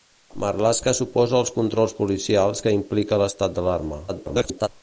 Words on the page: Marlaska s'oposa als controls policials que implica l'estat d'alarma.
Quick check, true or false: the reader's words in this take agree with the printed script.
false